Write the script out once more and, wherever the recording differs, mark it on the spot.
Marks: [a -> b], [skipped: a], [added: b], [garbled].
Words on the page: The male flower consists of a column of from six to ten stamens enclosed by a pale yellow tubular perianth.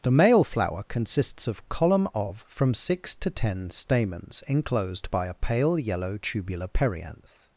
The male flower consists of [skipped: a] column of from six to ten stamens enclosed by a pale yellow tubular perianth.